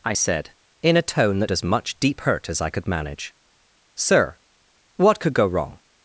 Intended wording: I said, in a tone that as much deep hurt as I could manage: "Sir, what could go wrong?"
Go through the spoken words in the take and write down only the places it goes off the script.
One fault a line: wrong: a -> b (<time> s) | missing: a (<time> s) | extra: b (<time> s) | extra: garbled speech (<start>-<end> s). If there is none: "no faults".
no faults